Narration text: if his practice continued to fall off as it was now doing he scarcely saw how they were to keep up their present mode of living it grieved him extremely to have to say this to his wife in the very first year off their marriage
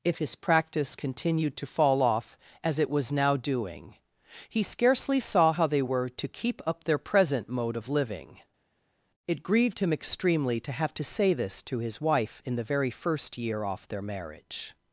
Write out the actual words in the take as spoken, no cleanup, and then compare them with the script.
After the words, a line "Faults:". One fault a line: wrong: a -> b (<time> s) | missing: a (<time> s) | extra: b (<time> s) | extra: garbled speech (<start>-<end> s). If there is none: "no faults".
if his practice continued to fall off as it was now doing he scarcely saw how they were to keep up their present mode of living it grieved him extremely to have to say this to his wife in the very first year off their marriage
Faults:
no faults